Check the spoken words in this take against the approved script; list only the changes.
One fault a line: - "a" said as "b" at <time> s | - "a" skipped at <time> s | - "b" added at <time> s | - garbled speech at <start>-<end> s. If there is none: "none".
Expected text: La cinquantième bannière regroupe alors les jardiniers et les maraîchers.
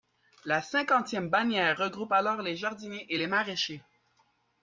none